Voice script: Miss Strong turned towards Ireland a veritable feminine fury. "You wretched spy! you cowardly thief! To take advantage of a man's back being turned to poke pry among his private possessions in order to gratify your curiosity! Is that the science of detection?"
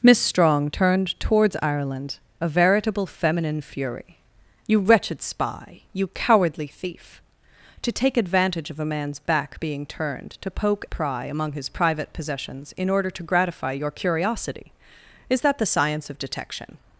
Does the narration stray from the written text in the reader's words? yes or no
no